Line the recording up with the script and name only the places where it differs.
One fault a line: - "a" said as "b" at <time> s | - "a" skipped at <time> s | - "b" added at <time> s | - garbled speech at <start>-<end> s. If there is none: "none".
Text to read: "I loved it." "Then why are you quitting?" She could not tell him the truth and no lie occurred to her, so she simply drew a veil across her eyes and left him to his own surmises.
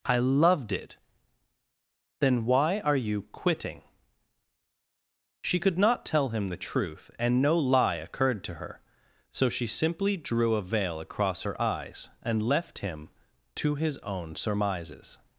none